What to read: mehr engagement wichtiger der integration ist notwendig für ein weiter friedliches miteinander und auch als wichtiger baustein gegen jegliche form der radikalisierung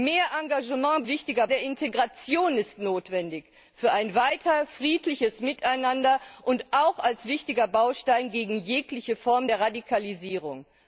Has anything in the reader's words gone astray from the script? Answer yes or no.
no